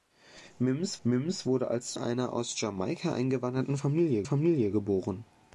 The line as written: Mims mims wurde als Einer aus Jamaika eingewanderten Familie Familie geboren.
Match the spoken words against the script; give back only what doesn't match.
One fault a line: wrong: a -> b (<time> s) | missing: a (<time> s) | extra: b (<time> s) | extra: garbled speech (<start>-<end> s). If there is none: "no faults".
no faults